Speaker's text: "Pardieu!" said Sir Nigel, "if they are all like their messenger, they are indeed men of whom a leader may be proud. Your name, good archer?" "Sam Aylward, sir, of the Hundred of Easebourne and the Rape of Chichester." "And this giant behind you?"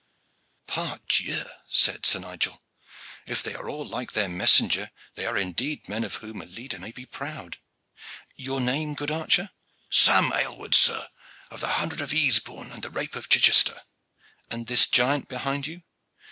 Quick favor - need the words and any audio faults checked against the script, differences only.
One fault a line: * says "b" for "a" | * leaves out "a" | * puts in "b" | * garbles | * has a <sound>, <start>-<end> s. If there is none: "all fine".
all fine